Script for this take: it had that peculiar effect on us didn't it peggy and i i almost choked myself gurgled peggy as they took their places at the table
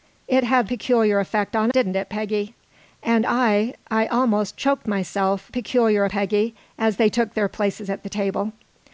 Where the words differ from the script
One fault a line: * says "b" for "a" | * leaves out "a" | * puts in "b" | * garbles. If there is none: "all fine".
* leaves out "that"
* leaves out "us"
* says "peculiar" for "gurgled"